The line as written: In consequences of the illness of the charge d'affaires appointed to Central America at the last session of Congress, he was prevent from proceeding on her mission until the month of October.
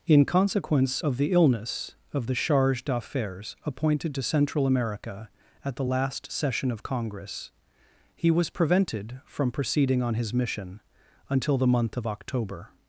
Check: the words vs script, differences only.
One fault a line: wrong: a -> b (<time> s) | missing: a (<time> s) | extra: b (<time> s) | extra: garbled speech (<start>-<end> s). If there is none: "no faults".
wrong: consequences -> consequence (0.2 s)
wrong: prevent -> prevented (8.5 s)
wrong: her -> his (10.1 s)